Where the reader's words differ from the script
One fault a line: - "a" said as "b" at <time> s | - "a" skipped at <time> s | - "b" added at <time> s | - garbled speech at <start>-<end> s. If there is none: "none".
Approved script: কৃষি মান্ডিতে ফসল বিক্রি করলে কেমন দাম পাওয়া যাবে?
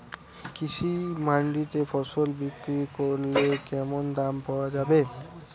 none